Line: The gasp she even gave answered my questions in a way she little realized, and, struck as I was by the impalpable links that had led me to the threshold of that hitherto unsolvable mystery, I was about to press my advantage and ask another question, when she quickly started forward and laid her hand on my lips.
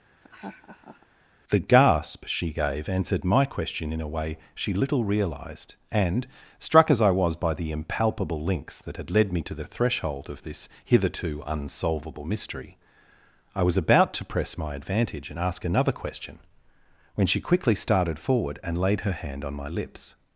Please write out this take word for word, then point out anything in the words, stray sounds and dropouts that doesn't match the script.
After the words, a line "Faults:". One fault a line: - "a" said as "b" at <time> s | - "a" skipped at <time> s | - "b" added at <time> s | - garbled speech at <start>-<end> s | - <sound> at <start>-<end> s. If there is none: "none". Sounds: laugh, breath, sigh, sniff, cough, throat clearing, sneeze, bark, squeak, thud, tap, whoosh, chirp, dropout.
The gasp she gave answered my question in a way she little realized, and, struck as I was by the impalpable links that had led me to the threshold of this hitherto unsolvable mystery, I was about to press my advantage and ask another question, when she quickly started forward and laid her hand on my lips.
Faults:
- laugh at 0.2-1.1 s
- "even" skipped at 2.5 s
- "questions" said as "question" at 3.4 s
- "that" said as "this" at 10.4 s